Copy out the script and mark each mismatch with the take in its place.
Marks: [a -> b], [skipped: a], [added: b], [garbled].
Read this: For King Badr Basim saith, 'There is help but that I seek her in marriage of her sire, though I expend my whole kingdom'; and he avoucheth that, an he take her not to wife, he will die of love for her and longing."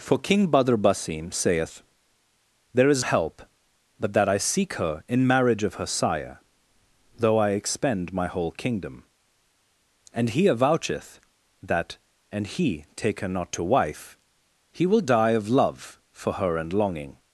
For King Badr Basim saith, 'There is help but that I seek her in marriage of her sire, though I expend my whole kingdom'; and he avoucheth that, an he take her not to wife, he will die of love for her and longing."